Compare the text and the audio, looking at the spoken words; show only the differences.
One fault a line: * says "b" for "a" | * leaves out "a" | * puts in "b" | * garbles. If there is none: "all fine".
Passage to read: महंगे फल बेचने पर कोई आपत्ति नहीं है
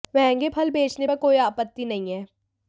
all fine